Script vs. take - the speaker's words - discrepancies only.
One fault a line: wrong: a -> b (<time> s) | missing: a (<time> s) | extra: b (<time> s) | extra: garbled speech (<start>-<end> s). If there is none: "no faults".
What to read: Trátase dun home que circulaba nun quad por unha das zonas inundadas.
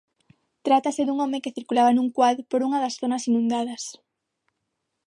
no faults